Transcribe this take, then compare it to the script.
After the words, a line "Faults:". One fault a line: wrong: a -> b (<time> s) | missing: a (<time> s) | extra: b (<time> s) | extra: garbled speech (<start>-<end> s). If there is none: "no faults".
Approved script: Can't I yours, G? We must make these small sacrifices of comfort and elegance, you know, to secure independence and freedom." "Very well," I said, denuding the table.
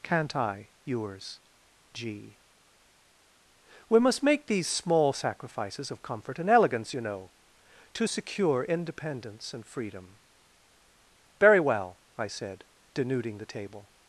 Can't I yours, G? We must make these small sacrifices of comfort and elegance, you know, to secure independence and freedom." "Very well," I said, denuding the table.
Faults:
no faults